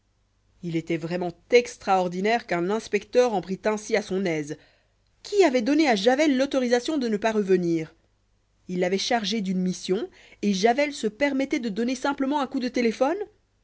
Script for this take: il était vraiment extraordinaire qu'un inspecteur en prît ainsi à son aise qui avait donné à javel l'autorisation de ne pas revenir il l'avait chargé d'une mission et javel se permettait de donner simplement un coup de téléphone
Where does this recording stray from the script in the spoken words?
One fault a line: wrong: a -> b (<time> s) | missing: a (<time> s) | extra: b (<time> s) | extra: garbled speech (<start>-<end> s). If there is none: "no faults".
no faults